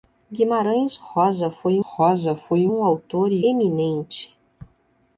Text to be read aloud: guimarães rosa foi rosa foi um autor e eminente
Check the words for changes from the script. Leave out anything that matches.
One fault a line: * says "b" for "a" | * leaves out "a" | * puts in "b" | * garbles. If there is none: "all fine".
all fine